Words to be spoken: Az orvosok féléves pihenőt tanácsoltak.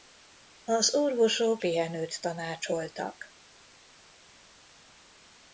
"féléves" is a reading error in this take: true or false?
true